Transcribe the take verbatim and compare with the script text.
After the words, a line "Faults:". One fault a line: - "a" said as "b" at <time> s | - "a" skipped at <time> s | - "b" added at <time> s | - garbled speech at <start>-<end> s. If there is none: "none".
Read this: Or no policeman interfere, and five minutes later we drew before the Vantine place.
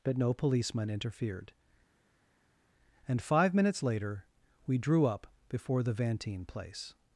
But no policeman interfered, and five minutes later we drew up before the Vantine place.
Faults:
- "Or" said as "But" at 0.0 s
- "interfere" said as "interfered" at 0.9 s
- "up" added at 5.1 s